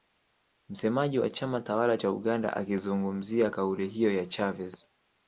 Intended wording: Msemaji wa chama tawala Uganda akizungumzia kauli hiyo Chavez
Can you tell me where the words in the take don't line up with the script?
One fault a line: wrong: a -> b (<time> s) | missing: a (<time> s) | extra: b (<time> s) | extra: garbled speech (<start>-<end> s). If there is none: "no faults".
extra: cha (1.9 s)
extra: ya (4.1 s)